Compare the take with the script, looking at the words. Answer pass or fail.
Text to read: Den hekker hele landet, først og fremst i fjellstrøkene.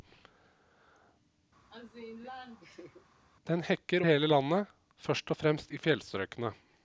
pass